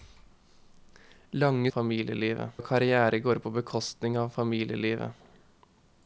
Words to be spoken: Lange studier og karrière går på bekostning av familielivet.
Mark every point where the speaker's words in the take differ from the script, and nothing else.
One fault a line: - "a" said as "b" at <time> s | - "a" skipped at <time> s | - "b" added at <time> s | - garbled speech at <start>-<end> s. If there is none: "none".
- "studier" said as "familielivet" at 1.7 s